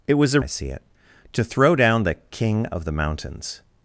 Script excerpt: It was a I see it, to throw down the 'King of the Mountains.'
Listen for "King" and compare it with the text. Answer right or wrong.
right